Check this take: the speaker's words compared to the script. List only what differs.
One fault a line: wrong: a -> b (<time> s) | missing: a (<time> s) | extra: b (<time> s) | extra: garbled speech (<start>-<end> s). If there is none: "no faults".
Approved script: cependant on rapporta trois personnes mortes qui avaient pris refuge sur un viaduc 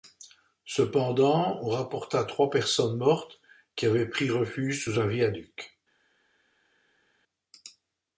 wrong: sur -> sous (4.8 s)